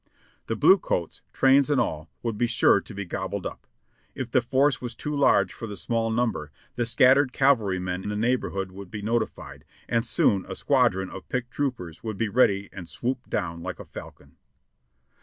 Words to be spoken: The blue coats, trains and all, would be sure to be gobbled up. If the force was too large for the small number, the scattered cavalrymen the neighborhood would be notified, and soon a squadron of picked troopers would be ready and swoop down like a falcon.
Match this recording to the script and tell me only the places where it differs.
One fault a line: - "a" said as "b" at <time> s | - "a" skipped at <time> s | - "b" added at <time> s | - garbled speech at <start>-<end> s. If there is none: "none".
none